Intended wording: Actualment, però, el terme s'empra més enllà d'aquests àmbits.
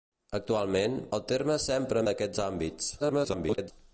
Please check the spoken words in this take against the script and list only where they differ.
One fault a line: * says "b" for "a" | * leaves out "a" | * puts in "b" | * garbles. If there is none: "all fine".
* leaves out "però"
* leaves out "més enllà"
* garbles